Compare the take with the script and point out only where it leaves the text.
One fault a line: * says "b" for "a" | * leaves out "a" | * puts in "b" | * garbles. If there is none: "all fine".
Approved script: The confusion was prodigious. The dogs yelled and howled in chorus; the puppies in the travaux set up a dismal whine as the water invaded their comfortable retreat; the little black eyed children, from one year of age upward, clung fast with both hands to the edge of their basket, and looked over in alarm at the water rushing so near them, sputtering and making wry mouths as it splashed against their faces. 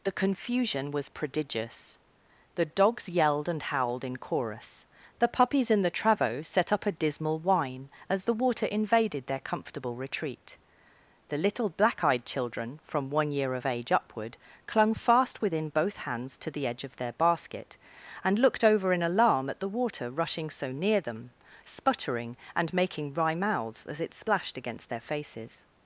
* says "within" for "with"